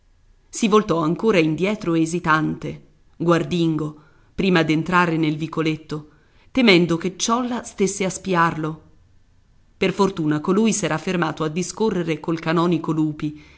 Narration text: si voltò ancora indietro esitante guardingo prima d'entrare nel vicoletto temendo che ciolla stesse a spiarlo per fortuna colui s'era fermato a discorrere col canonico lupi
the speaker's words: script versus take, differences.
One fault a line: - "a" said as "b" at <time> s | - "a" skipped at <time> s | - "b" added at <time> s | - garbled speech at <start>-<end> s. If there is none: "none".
none